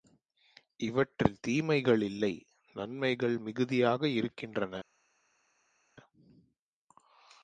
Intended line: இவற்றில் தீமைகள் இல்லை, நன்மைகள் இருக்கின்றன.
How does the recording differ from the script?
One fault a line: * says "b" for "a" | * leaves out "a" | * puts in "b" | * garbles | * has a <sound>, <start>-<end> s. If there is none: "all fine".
* puts in "மிகுதியாக"